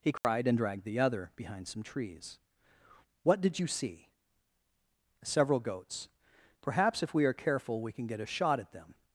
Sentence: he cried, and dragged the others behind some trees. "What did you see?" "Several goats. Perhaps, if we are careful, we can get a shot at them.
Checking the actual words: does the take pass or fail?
fail